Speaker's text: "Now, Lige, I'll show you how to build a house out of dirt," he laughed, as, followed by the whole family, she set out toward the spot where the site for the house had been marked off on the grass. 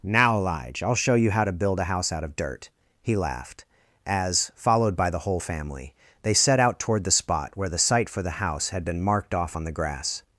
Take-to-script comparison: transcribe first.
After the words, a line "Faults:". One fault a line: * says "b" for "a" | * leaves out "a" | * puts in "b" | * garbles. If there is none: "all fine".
"Now, Lige, I'll show you how to build a house out of dirt," he laughed, as, followed by the whole family, they set out toward the spot where the site for the house had been marked off on the grass.
Faults:
* says "they" for "she"